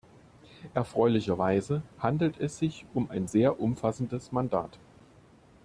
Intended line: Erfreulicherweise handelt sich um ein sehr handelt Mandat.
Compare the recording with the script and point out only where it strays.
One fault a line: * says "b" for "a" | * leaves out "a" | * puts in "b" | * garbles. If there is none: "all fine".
* puts in "es"
* says "umfassendes" for "handelt"